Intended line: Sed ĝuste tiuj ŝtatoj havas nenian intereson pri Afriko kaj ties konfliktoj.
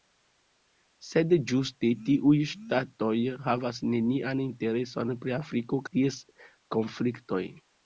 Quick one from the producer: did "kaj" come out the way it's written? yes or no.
no